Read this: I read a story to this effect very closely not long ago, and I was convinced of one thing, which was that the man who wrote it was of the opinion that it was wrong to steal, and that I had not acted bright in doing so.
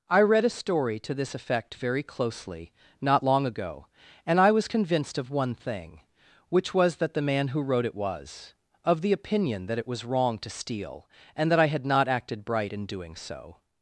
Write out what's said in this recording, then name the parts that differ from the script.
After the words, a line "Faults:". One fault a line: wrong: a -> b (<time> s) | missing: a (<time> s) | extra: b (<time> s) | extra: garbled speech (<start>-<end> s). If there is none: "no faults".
I read a story to this effect very closely not long ago, and I was convinced of one thing, which was that the man who wrote it was of the opinion that it was wrong to steal, and that I had not acted bright in doing so.
Faults:
no faults